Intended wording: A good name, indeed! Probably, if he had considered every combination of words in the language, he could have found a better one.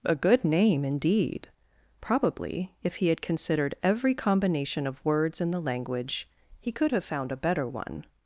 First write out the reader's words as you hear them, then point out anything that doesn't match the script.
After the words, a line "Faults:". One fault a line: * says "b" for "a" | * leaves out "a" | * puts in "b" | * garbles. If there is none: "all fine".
A good name, indeed! Probably, if he had considered every combination of words in the language, he could have found a better one.
Faults:
all fine